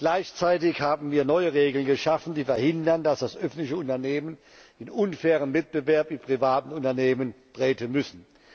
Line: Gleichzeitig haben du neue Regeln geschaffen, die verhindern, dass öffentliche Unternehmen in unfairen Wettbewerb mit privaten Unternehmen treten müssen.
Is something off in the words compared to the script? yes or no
yes